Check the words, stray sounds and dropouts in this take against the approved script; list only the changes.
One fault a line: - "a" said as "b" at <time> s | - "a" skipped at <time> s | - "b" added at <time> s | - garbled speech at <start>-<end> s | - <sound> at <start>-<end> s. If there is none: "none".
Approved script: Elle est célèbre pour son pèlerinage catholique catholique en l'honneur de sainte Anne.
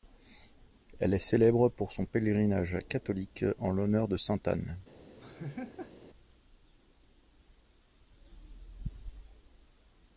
- "catholique" skipped at 3.5 s
- laugh at 5.2-5.9 s